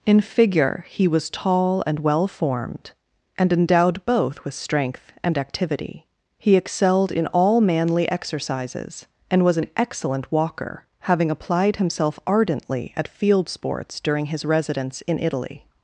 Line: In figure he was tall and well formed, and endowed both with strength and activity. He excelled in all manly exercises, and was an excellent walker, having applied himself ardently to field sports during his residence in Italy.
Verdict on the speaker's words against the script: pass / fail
fail